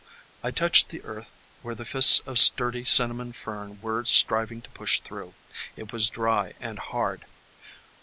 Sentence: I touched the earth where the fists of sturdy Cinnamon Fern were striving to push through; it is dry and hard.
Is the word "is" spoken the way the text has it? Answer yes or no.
no